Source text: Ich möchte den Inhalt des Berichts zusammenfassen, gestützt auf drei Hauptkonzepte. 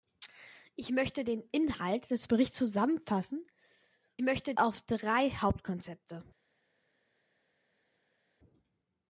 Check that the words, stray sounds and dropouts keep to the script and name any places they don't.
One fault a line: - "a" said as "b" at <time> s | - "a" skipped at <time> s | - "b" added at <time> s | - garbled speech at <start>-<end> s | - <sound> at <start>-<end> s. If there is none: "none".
- "gestützt" said as "möchte" at 4.2 s